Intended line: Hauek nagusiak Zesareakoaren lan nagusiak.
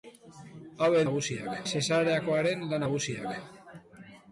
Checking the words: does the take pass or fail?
pass